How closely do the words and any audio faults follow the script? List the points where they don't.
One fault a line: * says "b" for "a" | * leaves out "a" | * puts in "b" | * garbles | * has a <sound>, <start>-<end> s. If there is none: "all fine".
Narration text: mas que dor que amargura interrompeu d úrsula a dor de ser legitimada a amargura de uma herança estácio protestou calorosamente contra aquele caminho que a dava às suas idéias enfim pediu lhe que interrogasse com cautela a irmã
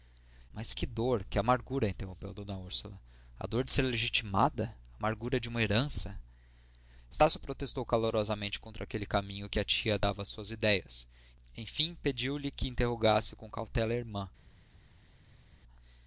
* puts in "tia"